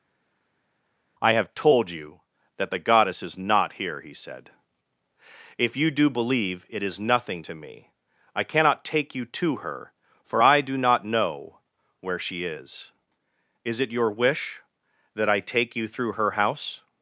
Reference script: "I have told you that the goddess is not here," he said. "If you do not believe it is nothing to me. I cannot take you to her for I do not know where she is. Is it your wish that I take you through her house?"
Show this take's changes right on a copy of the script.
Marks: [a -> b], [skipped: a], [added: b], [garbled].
"I have told you that the goddess is not here," he said. "If you do [skipped: not] believe it is nothing to me. I cannot take you to her for I do not know where she is. Is it your wish that I take you through her house?"